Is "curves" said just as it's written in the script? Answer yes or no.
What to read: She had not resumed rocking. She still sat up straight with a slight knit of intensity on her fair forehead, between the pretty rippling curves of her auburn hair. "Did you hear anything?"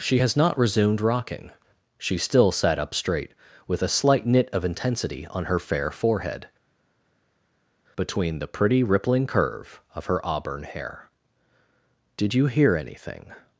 no